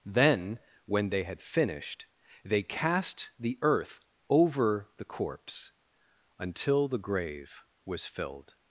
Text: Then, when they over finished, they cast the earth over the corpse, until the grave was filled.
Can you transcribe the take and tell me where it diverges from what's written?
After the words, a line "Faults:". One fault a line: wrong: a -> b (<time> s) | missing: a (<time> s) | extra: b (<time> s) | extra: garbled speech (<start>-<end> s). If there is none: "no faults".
Then, when they had finished, they cast the earth over the corpse, until the grave was filled.
Faults:
wrong: over -> had (1.2 s)